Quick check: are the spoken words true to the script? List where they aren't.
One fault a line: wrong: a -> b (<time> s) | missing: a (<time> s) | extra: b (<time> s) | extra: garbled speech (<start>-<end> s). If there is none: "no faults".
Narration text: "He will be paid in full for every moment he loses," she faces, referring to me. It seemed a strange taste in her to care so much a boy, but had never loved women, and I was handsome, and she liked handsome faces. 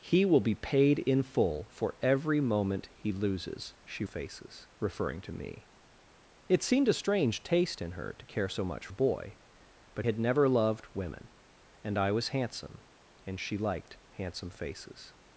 no faults